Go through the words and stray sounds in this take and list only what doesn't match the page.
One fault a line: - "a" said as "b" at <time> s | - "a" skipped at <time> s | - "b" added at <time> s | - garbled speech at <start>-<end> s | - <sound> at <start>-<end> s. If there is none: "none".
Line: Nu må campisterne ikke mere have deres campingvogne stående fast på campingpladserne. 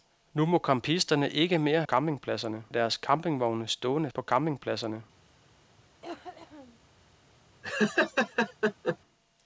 - "have" said as "campingpladserne" at 1.8 s
- "fast" skipped at 4.1 s
- cough at 6.0-6.8 s
- laugh at 7.6-9.0 s